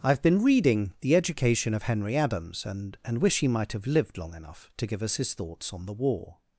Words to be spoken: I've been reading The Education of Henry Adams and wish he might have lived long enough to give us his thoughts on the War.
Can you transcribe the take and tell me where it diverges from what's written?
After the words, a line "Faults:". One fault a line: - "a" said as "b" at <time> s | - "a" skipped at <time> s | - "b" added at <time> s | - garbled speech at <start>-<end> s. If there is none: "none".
I've been reading The Education of Henry Adams and and wish he might have lived long enough to give us his thoughts on the War.
Faults:
- "and" added at 3.0 s